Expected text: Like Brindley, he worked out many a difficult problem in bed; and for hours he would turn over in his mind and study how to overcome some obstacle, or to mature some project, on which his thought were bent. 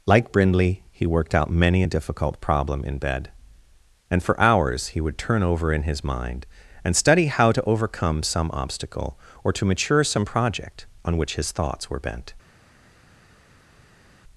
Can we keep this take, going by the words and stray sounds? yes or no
no